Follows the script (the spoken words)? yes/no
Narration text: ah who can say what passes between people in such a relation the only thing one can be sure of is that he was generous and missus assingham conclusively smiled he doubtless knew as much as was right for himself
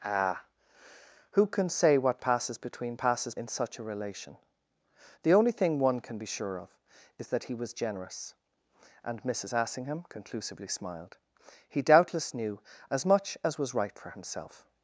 no